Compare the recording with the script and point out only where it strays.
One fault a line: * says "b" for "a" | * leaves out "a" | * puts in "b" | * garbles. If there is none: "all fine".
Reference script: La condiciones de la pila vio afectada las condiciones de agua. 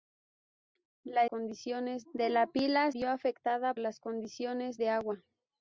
all fine